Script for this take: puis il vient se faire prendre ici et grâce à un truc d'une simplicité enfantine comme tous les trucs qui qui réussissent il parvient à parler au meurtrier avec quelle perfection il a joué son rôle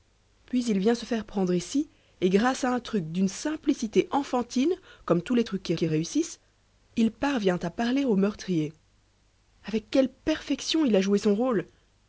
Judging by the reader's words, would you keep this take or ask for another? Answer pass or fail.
pass